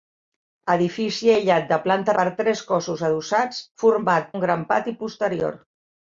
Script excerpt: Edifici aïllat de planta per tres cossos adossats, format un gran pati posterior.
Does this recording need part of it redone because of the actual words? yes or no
no